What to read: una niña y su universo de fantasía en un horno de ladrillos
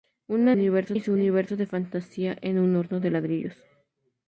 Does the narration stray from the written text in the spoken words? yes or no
yes